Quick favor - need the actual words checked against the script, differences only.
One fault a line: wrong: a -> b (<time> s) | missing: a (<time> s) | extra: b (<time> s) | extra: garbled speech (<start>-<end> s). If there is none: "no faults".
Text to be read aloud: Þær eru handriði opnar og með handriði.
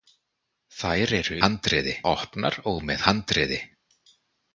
no faults